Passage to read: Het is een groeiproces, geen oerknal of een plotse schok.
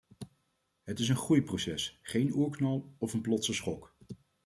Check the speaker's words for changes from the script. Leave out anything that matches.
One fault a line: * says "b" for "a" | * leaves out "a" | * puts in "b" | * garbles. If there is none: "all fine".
all fine